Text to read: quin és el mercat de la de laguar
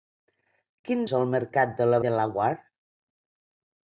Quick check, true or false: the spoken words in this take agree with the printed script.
true